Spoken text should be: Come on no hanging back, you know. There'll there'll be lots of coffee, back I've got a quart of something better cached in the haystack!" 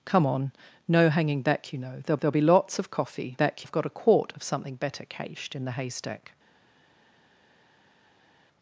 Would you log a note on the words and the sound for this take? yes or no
no